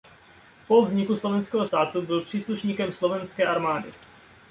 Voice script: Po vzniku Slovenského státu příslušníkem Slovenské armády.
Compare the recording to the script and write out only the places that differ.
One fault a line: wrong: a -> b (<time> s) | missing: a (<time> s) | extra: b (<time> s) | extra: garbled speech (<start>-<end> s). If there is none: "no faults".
extra: byl (2.0 s)